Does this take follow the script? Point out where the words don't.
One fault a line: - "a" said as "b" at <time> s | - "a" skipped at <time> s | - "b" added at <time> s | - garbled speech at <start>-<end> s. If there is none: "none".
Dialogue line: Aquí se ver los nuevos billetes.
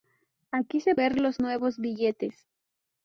none